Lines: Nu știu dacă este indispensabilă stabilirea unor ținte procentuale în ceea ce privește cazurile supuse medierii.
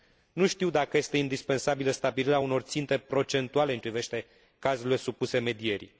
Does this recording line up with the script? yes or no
no